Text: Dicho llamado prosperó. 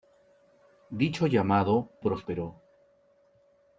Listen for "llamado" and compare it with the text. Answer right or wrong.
right